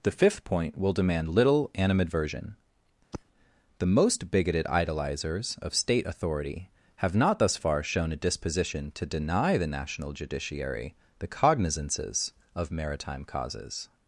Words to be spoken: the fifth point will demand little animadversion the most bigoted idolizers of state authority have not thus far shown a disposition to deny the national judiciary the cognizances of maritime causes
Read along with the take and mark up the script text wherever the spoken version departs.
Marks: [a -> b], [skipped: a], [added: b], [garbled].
the fifth point will demand little animadversion the most bigoted idolizers of state authority have not thus far shown a disposition to deny the national judiciary the cognizances of maritime causes